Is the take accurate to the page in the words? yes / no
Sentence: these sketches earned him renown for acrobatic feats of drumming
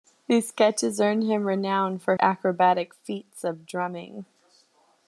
yes